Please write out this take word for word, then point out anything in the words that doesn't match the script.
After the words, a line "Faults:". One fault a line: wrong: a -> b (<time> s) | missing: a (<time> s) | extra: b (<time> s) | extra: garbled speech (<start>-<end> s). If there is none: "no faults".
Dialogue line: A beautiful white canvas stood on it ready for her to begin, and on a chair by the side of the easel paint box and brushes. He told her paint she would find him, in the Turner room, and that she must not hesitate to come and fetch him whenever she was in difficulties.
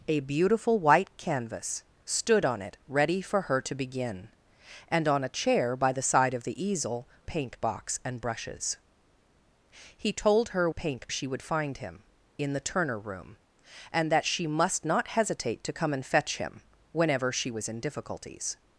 A beautiful white canvas stood on it ready for her to begin, and on a chair by the side of the easel paint box and brushes. He told her paint she would find him, in the Turner room, and that she must not hesitate to come and fetch him whenever she was in difficulties.
Faults:
no faults